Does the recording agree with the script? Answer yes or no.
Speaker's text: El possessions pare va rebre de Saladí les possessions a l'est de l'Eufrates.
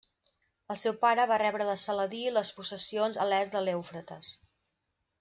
no